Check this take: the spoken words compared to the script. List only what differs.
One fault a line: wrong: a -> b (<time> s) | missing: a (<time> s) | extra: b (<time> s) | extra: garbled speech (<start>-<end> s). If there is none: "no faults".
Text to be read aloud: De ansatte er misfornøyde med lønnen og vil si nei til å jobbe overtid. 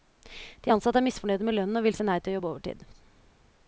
no faults